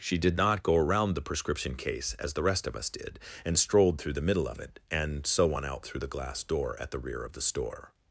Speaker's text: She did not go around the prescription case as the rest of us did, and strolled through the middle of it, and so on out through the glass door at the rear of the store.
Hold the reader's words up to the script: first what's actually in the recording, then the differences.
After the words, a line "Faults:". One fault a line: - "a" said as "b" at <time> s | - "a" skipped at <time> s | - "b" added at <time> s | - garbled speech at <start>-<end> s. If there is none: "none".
She did not go around the prescription case as the rest of us did, and strolled through the middle of it, and so on out through the glass door at the rear of the store.
Faults:
none